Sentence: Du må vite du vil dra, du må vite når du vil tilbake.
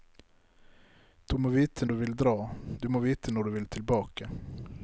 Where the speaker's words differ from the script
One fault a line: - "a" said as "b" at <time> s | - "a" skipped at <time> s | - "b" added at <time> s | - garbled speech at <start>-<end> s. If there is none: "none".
none